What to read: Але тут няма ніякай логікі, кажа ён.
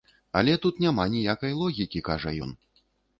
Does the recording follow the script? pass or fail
pass